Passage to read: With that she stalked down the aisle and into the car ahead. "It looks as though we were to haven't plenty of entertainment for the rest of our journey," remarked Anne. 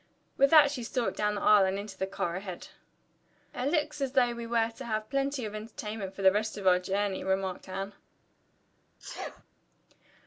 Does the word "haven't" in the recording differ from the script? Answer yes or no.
yes